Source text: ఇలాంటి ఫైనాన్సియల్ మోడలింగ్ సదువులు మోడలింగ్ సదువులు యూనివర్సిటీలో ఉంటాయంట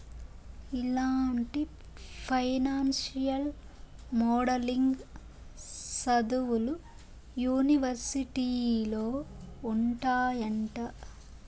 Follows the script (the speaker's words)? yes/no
no